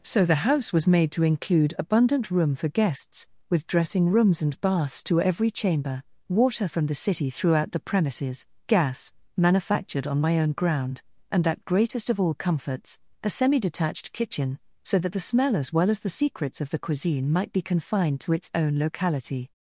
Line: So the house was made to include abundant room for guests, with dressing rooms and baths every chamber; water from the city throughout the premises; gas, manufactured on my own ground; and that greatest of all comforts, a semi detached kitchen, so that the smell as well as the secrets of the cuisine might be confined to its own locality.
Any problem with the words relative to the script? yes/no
yes